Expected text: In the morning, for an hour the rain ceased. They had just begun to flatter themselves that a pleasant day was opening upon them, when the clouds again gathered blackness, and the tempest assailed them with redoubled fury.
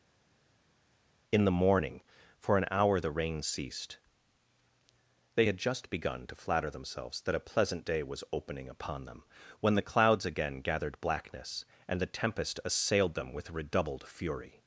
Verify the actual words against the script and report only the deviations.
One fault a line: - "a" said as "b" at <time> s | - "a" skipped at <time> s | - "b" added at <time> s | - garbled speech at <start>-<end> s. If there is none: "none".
none